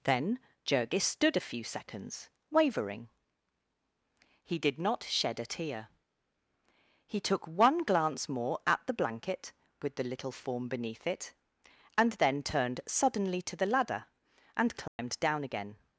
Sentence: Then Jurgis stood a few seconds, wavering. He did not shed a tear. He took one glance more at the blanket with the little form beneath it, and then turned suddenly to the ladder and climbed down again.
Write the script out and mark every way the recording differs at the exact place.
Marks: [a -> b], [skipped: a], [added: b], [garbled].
Then Jurgis stood a few seconds, wavering. He did not shed a tear. He took one glance more at the blanket with the little form beneath it, and then turned suddenly to the ladder and climbed down again.